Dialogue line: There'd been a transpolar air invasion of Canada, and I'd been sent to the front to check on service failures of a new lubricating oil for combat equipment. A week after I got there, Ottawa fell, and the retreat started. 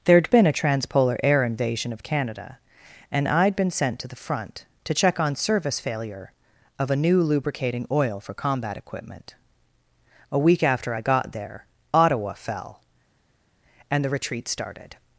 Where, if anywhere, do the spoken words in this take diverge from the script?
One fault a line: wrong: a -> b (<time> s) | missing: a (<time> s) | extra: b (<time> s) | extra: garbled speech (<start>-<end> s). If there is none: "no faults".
wrong: failures -> failure (5.8 s)